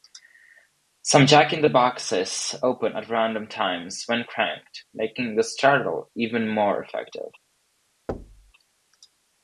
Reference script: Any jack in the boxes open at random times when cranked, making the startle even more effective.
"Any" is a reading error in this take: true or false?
true